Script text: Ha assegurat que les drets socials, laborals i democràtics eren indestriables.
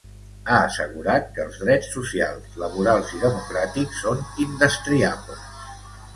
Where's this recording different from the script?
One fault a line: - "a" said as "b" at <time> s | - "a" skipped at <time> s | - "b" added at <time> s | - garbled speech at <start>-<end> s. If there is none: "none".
- "les" said as "els" at 1.4 s
- "eren" said as "són" at 4.1 s